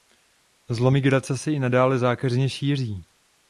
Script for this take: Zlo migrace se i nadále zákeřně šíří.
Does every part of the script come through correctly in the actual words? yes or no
yes